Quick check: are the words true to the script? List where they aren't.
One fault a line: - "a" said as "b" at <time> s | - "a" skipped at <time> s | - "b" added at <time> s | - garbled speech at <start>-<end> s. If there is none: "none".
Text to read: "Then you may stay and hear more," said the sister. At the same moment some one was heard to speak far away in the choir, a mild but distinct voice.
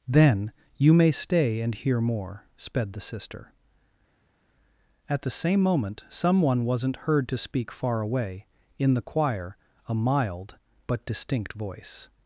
- "said" said as "sped" at 2.6 s
- "was" said as "wasn't" at 6.7 s